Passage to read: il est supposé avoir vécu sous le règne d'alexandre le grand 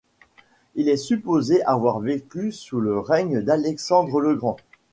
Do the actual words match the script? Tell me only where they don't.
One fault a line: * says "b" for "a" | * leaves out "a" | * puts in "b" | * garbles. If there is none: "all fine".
all fine